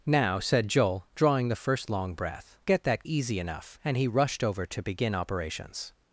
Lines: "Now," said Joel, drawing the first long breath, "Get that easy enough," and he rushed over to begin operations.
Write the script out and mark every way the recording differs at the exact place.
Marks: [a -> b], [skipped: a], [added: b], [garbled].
"Now," said Joel, drawing the first long breath, "Get that easy enough," and he rushed over to begin operations.